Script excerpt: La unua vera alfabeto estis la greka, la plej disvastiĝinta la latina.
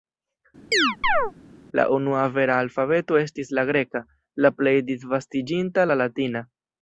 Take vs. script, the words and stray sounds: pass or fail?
fail